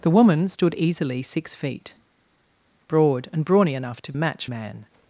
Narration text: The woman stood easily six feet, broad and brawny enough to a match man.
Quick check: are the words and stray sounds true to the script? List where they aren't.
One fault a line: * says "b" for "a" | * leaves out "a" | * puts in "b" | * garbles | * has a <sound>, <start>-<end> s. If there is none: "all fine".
all fine